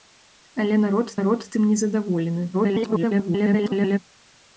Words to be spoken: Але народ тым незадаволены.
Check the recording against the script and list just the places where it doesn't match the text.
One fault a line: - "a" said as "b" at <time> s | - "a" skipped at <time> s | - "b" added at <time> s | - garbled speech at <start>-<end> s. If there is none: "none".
- "народ" added at 1.2 s
- garbled speech at 2.5-4.0 s